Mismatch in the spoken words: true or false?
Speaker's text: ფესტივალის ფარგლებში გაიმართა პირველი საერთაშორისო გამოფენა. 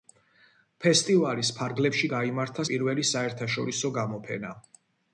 false